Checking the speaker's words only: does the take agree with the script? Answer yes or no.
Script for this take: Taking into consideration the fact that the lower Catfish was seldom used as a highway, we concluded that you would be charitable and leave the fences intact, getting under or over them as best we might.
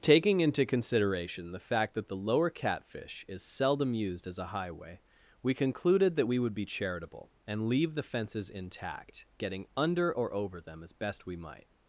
no